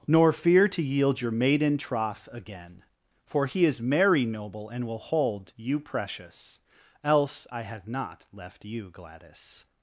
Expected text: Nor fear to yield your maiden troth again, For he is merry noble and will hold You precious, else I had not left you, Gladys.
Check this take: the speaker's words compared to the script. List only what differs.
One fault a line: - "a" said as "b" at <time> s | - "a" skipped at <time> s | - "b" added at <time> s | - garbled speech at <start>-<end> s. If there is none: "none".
none